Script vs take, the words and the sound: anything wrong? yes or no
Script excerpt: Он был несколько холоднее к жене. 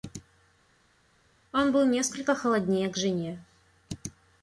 no